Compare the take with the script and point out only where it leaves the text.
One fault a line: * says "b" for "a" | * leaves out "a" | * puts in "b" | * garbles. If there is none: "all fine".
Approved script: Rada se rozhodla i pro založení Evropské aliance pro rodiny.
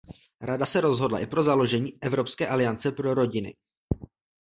all fine